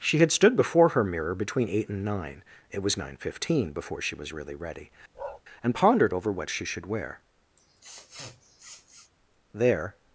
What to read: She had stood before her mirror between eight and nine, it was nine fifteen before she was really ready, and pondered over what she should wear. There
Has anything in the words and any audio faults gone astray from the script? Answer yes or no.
yes